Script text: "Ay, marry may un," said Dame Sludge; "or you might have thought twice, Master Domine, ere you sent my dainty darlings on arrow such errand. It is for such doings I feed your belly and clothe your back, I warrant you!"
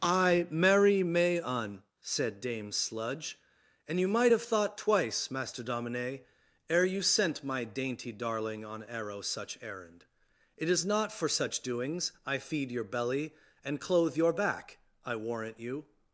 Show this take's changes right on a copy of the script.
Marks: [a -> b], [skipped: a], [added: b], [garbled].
"Ay, marry may un," said Dame Sludge; ["or -> and] you might have thought twice, Master Domine, ere you sent my dainty [darlings -> darling] on arrow such errand. It is [added: not] for such doings I feed your belly and clothe your back, I warrant you!"